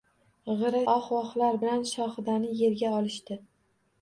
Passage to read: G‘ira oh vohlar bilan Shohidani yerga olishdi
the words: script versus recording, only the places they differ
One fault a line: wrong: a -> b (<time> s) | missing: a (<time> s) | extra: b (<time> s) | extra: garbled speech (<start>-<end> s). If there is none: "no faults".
no faults